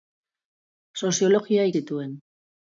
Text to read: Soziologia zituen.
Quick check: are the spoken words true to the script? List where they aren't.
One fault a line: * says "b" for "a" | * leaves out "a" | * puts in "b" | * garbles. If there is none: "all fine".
all fine